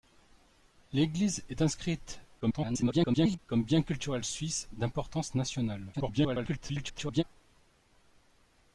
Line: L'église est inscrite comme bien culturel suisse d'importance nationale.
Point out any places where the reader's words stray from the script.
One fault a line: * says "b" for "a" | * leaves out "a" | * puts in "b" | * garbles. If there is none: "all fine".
* garbles
* garbles